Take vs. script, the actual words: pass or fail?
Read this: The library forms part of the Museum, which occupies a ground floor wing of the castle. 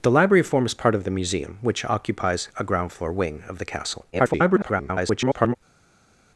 fail